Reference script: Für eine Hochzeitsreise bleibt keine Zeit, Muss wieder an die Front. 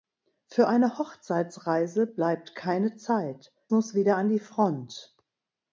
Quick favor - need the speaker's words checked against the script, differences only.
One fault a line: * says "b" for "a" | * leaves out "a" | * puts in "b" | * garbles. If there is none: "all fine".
all fine